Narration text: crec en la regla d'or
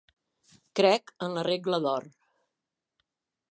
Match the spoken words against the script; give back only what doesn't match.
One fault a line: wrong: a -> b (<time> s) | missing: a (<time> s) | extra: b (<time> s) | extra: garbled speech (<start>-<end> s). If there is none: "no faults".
no faults